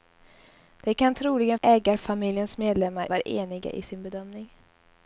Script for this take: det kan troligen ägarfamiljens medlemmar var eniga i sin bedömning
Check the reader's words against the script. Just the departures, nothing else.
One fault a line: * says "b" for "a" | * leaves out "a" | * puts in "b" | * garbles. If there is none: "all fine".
all fine